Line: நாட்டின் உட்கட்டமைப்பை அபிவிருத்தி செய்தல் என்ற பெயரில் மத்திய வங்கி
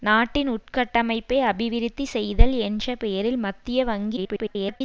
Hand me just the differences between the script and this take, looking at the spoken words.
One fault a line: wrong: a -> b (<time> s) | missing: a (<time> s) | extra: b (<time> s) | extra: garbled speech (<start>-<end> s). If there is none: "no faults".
extra: garbled speech (4.2-4.8 s)